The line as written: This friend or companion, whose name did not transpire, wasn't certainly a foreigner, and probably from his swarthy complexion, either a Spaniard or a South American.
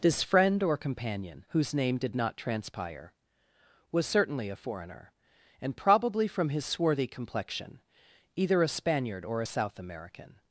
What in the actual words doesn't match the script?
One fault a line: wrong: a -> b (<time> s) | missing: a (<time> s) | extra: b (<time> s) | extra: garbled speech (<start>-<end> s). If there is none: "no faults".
wrong: wasn't -> was (3.9 s)